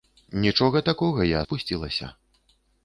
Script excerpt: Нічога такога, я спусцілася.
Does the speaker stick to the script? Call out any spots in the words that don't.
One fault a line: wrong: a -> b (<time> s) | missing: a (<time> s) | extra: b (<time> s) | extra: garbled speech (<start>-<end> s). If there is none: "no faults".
no faults